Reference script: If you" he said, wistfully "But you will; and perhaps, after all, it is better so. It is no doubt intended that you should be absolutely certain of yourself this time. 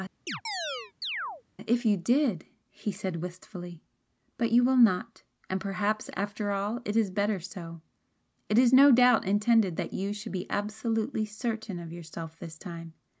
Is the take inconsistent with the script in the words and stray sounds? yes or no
yes